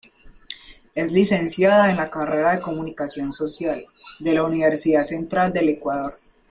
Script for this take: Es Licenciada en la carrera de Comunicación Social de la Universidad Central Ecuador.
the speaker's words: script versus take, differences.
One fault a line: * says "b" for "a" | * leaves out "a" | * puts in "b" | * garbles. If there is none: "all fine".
* puts in "del"